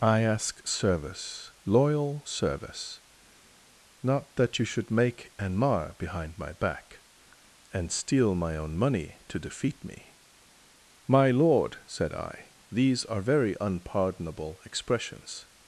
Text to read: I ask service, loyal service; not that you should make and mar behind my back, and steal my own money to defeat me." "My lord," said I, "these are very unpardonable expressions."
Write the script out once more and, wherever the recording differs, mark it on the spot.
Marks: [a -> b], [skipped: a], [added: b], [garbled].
I ask service, loyal service; not that you should make and mar behind my back, and steal my own money to defeat me." "My lord," said I, "these are very unpardonable expressions."